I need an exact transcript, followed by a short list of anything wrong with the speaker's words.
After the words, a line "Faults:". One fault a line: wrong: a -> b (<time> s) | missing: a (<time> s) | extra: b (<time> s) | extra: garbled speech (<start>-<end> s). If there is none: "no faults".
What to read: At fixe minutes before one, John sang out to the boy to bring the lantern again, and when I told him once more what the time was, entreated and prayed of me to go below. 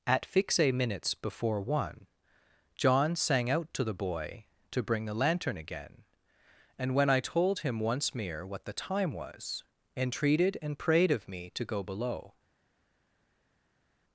At fixe minutes before one, John sang out to the boy to bring the lantern again, and when I told him once mere what the time was, entreated and prayed of me to go below.
Faults:
wrong: more -> mere (8.2 s)